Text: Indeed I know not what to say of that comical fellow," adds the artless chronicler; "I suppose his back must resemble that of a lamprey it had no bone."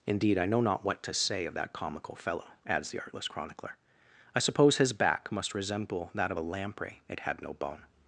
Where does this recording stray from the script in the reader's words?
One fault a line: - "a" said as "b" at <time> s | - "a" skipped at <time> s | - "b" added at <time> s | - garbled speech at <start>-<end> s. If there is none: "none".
none